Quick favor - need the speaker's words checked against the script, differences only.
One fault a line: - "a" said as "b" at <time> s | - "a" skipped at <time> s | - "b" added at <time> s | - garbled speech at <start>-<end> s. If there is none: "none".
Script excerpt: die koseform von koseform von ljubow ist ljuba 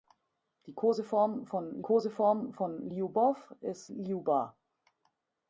none